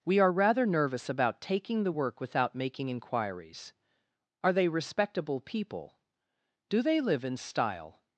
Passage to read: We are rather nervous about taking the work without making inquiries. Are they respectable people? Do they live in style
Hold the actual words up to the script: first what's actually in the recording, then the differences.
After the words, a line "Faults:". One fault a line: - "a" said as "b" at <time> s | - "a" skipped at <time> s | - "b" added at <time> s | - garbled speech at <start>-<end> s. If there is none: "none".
We are rather nervous about taking the work without making inquiries. Are they respectable people? Do they live in style
Faults:
none